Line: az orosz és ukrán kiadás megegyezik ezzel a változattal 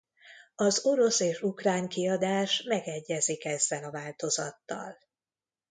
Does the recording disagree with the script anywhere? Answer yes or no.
no